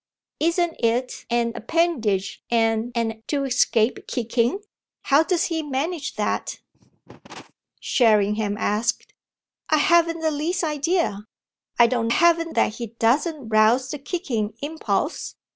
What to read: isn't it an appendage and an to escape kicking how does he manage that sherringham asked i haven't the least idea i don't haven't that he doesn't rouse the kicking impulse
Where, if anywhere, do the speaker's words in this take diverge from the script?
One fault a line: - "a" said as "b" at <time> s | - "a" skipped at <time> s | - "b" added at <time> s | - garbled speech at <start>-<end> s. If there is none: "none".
none